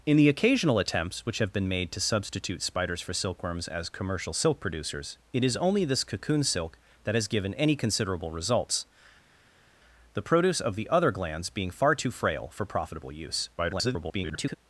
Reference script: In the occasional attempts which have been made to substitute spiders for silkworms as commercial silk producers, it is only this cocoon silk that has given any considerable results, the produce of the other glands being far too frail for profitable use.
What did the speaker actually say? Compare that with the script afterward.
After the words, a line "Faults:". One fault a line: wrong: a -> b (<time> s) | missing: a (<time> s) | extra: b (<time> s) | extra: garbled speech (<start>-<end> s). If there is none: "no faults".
In the occasional attempts which have been made to substitute spiders for silkworms as commercial silk producers, it is only this cocoon silk that has given any considerable results, the produce of the other glands being far too frail for profitable use. [garbled]
Faults:
extra: garbled speech (13.6-14.5 s)